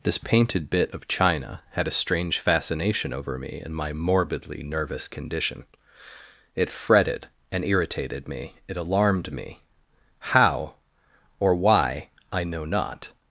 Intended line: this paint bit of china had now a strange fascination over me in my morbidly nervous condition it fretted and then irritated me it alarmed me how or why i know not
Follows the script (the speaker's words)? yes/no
no